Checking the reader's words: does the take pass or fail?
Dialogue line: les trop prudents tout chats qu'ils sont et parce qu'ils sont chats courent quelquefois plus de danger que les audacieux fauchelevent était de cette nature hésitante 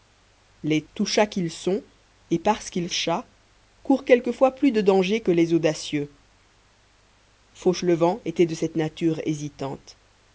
fail